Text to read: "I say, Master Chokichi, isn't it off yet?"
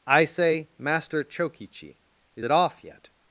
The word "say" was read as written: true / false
true